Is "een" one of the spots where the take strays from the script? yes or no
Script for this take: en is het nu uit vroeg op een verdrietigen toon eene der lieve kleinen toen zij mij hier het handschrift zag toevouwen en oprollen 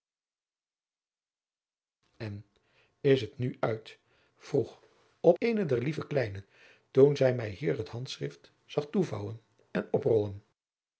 yes